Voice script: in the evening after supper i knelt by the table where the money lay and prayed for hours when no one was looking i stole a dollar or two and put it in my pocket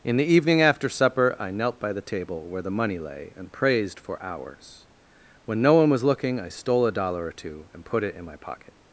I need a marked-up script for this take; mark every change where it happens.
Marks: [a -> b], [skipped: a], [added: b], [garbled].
in the evening after supper i knelt by the table where the money lay and [prayed -> praised] for hours when no one was looking i stole a dollar or two and put it in my pocket